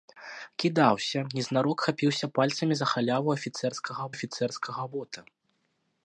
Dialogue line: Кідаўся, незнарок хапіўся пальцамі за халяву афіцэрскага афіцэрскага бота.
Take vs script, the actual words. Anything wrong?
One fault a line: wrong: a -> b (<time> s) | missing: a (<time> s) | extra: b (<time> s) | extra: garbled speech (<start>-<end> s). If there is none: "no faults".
no faults